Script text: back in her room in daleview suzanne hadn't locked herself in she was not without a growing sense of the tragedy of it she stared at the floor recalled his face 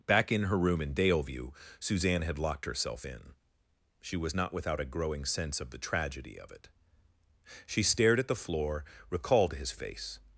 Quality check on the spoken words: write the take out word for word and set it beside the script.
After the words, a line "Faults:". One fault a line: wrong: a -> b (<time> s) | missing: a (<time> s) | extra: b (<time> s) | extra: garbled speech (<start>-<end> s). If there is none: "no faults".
back in her room in daleview suzanne had locked herself in she was not without a growing sense of the tragedy of it she stared at the floor recalled his face
Faults:
wrong: hadn't -> had (2.2 s)